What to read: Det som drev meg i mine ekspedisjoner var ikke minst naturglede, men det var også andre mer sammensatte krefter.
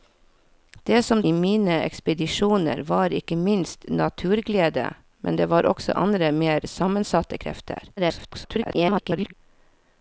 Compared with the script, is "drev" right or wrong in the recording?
wrong